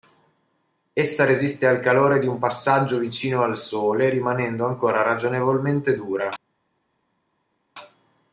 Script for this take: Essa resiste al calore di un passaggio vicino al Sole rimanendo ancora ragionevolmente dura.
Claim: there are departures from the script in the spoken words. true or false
false